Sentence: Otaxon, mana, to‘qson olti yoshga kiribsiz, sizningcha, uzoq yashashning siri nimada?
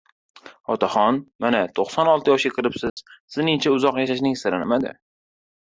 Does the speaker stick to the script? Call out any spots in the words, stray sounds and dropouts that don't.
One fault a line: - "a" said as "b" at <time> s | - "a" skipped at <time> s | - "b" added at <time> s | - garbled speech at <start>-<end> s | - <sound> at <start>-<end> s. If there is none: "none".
- dropout at 2.9-3.0 s